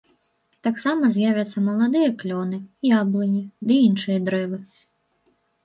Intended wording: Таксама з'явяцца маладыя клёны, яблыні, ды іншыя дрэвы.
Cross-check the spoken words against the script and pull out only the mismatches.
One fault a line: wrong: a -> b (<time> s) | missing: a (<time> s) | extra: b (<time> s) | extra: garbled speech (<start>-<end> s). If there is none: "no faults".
no faults